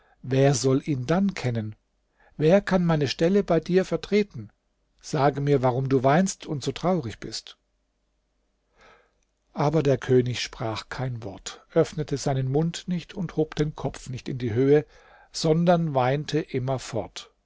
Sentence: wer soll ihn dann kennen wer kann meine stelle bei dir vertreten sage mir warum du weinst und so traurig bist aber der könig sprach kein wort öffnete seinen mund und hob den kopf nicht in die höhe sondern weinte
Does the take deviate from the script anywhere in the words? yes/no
yes